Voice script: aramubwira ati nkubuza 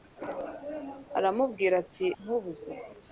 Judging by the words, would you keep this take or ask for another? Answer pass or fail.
pass